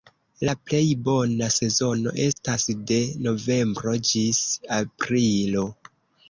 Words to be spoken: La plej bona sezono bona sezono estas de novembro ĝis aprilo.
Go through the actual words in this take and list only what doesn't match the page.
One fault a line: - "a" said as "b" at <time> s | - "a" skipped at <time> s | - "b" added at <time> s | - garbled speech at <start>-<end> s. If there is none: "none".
- "bona sezono" skipped at 2.1 s